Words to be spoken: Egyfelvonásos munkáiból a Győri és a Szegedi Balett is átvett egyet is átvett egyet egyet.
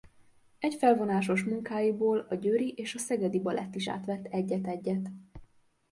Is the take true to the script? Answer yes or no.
no